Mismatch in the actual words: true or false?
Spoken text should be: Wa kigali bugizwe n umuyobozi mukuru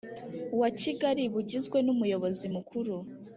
false